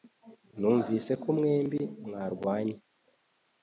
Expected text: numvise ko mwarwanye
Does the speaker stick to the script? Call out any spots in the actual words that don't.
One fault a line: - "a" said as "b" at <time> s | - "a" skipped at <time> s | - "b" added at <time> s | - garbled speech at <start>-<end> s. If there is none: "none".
- "mwembi" added at 1.4 s